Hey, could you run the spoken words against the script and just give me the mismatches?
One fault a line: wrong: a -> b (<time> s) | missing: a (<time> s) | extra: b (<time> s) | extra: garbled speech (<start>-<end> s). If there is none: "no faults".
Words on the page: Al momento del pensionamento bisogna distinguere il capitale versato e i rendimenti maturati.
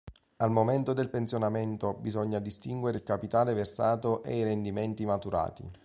no faults